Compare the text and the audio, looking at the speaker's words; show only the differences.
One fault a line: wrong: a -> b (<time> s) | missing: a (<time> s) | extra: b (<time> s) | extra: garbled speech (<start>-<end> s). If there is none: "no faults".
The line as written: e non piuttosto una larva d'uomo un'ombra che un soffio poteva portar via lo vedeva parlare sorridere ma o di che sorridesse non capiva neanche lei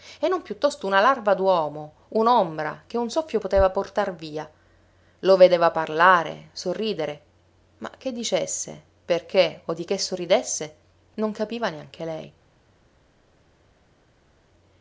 extra: che dicesse perché (8.0 s)